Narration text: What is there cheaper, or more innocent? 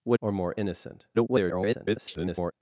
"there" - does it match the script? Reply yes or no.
no